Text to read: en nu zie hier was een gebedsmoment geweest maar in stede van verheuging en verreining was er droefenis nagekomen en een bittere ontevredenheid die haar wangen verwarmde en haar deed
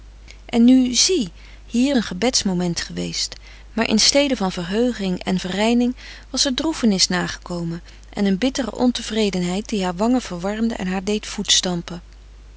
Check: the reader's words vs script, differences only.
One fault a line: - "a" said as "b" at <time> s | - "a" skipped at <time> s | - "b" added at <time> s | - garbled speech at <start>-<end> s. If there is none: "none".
- "was" skipped at 2.0 s